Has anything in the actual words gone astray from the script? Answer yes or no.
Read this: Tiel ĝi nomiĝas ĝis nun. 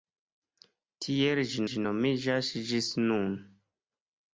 yes